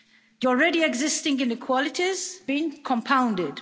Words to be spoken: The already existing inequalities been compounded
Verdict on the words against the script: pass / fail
pass